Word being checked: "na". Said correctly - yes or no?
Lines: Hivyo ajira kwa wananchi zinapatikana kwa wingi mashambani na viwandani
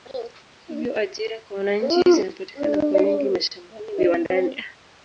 no